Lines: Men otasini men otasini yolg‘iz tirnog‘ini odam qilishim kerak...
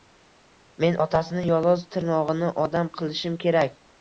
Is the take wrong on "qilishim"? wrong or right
right